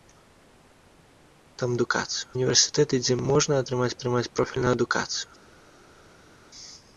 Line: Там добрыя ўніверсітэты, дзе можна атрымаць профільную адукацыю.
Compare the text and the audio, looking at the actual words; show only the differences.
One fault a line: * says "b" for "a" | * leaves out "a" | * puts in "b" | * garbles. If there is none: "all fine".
* says "адукацыю" for "добрыя"
* puts in "атрымаць"